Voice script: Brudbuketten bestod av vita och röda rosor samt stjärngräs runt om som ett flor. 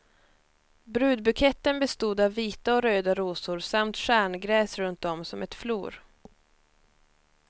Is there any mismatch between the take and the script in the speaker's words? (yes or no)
no